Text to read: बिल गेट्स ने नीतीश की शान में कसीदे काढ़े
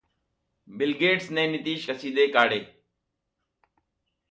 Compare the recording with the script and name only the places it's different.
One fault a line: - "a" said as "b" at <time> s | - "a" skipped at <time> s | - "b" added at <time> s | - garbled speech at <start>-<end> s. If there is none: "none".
- "की शान में" skipped at 1.8 s